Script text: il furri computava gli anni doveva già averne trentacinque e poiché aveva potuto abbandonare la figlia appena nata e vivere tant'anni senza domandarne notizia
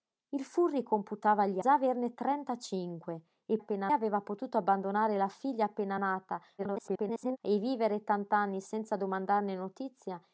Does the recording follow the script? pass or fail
fail